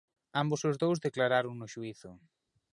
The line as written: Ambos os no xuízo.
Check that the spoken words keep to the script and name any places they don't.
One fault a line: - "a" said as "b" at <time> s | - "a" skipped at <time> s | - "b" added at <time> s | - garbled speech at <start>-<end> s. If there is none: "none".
- "dous declararon" added at 0.8 s